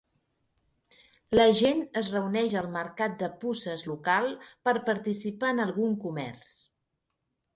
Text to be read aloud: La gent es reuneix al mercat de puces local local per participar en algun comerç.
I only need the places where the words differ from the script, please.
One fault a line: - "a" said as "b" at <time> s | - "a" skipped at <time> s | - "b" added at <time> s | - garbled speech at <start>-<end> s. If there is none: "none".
- "local" skipped at 4.3 s